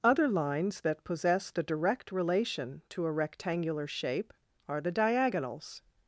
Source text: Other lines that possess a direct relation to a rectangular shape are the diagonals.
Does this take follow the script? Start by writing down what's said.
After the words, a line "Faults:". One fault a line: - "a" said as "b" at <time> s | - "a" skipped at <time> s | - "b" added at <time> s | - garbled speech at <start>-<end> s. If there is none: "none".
Other lines that possess the direct relation to a rectangular shape are the diagonals.
Faults:
- "a" said as "the" at 1.5 s